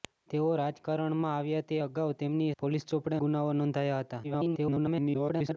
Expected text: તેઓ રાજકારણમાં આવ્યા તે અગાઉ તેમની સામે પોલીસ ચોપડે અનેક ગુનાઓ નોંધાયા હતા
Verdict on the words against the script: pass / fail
fail